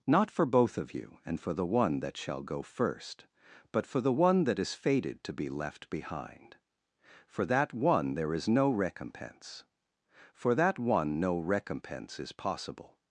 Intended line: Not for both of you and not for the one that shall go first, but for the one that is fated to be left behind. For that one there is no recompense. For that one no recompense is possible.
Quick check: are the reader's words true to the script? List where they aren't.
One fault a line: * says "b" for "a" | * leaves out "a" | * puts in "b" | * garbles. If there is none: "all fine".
* leaves out "not"